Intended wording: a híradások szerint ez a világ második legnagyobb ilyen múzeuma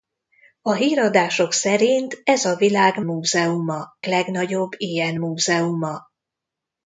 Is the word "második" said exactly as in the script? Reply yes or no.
no